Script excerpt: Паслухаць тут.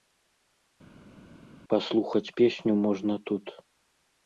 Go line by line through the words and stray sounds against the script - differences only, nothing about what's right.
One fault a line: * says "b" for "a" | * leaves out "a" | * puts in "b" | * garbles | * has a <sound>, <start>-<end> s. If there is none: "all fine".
* puts in "песню можна"